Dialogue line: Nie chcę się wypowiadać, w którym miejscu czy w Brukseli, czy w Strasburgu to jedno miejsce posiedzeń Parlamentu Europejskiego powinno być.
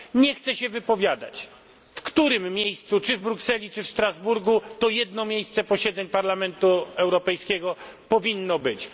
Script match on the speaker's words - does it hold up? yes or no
yes